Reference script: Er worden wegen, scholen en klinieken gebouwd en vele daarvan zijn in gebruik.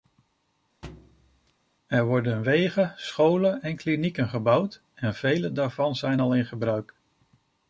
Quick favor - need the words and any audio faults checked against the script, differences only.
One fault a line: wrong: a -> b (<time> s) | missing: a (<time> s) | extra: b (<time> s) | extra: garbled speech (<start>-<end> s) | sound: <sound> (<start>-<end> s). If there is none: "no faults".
sound: thud (0.8-1.5 s)
extra: al (6.2 s)